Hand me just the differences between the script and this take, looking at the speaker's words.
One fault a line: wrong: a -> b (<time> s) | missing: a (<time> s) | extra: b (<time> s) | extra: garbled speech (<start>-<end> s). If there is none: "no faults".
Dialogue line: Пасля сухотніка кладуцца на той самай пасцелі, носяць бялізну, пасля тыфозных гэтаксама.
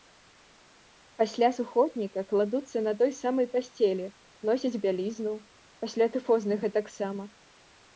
no faults